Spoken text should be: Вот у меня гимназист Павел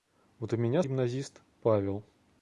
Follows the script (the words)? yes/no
yes